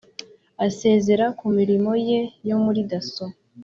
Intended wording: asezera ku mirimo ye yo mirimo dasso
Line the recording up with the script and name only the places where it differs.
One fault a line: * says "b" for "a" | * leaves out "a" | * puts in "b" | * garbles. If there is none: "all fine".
* says "muri" for "mirimo"